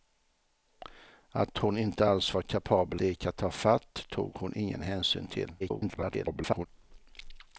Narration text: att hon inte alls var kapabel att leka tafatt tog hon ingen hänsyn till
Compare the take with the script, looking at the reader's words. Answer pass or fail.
fail